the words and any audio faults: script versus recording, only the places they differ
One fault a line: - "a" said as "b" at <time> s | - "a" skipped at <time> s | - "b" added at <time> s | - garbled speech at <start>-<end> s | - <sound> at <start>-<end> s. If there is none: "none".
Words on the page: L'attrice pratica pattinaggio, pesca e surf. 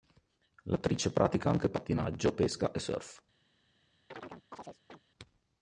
- "anche" added at 1.5 s
- chirp at 4.1-5.0 s